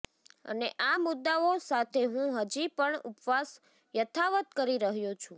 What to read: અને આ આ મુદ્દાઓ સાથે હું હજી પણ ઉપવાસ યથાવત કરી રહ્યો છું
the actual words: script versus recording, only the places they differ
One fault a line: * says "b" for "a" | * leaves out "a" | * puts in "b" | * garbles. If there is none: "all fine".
* leaves out "આ"